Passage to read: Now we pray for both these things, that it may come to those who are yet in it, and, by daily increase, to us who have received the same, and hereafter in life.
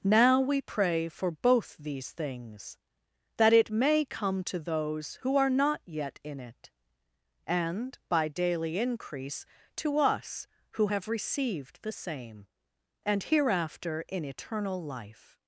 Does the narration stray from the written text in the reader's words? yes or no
yes